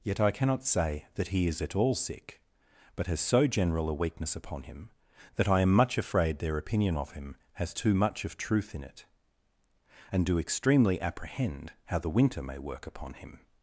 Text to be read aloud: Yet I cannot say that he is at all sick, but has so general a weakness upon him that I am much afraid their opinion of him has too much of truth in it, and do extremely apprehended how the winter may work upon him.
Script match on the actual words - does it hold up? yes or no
no